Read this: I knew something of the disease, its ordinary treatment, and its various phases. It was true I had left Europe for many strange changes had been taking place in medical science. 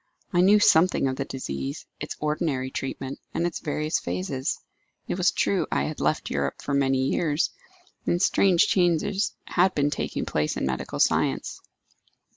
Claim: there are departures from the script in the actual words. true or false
true